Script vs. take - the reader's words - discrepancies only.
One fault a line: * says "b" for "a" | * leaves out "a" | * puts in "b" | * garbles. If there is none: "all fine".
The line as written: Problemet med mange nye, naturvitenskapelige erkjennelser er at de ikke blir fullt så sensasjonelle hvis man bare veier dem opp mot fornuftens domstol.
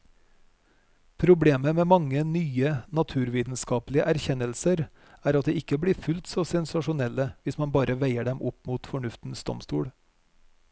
all fine